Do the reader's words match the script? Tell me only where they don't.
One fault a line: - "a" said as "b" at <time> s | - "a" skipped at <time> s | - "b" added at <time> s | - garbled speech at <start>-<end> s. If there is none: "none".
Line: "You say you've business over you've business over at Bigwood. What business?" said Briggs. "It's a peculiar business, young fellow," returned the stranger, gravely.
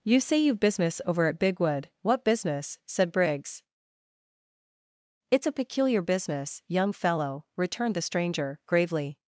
- "you've business over" skipped at 1.3 s